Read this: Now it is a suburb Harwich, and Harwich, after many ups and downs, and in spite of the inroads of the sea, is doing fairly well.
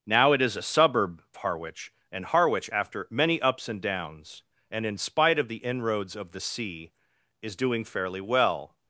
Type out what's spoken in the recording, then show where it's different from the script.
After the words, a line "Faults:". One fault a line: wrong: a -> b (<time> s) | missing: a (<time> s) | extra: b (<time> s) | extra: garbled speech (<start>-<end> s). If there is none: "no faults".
Now it is a suburb Harwich, and Harwich, after many ups and downs, and in spite of the inroads of the sea, is doing fairly well.
Faults:
no faults